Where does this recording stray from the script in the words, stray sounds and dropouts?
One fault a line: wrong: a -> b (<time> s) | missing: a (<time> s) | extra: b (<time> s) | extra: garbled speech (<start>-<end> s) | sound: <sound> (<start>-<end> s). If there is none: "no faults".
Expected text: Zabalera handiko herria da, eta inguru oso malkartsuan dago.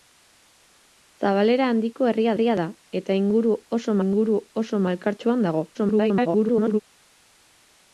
extra: herria (2.3 s)
extra: inguru oso (4.1 s)
extra: garbled speech (5.7-6.8 s)